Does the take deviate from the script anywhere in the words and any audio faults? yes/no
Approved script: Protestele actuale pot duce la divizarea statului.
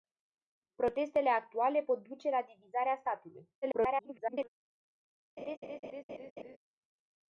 yes